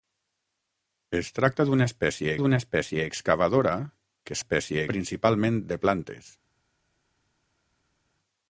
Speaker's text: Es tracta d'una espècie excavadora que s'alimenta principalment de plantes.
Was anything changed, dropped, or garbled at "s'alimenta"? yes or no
yes